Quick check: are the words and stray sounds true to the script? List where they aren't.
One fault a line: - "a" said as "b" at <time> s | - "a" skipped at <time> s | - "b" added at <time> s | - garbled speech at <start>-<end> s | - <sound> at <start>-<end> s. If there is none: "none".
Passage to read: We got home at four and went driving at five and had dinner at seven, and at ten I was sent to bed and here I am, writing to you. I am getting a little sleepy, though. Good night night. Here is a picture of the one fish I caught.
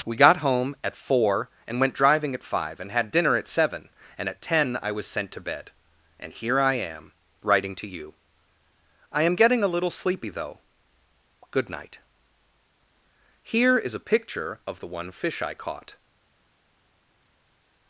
- "night" skipped at 12.0 s